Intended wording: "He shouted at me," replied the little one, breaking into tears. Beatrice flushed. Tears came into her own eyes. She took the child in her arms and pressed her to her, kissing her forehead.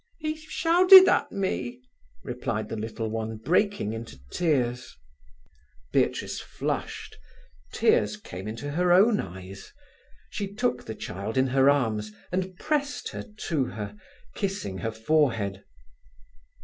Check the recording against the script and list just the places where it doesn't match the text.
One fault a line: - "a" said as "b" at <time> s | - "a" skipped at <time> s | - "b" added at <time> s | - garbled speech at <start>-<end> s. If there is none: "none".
none